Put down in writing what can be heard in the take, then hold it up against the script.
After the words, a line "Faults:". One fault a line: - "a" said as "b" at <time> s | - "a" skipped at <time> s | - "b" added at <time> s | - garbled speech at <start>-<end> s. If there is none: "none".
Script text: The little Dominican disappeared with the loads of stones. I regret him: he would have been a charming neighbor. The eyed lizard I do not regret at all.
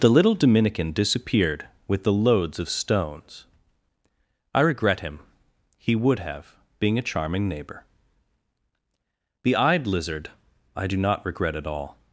The little Dominican disappeared with the loads of stones. I regret him: he would have being a charming neighbor. The eyed lizard I do not regret at all.
Faults:
- "been" said as "being" at 6.8 s